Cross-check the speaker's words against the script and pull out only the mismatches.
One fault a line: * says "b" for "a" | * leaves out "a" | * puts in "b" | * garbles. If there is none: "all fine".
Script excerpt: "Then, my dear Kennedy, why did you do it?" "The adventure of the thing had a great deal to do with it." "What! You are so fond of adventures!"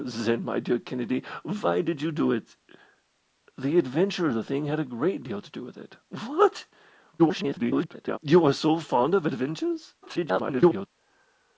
* garbles
* garbles